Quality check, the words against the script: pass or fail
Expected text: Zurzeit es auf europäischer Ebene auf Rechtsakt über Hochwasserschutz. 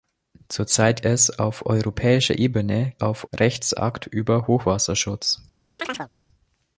pass